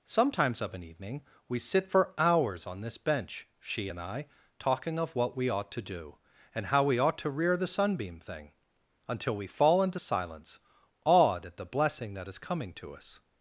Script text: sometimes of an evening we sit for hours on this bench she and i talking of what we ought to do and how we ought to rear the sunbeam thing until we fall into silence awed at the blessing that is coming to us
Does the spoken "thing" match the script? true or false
true